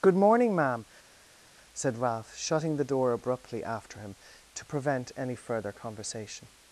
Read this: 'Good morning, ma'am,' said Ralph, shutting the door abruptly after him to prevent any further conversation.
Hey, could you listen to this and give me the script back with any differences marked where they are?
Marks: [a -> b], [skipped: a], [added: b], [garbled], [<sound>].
'Good morning, ma'am,' said Ralph, shutting the door abruptly after him to prevent any further conversation.